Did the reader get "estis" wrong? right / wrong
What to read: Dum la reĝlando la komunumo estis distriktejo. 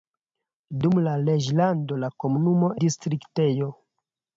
wrong